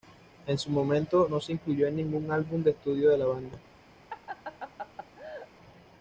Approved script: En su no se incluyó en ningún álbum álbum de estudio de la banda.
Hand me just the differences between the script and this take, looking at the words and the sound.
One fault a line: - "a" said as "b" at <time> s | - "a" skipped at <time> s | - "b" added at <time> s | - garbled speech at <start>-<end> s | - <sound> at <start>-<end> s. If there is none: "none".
- "momento" added at 0.7 s
- "álbum" skipped at 2.6 s
- laugh at 4.1-5.5 s